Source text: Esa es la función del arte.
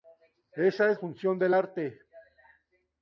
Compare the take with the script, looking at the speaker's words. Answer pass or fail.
fail